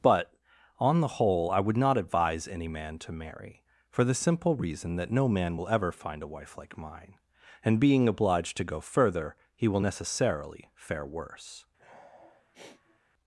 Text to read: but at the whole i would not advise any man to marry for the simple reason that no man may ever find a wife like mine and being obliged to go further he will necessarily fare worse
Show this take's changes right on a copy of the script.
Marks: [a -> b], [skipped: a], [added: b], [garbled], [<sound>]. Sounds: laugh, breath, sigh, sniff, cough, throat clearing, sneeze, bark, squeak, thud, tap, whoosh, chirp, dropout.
but [at -> on] the whole i would not advise any man to marry for the simple reason that no man [may -> will] ever find a wife like mine and being obliged to go further he will necessarily fare worse [sniff]